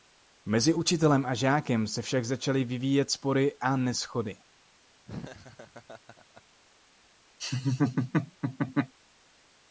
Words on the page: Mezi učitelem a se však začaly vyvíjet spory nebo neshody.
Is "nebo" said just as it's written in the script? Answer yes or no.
no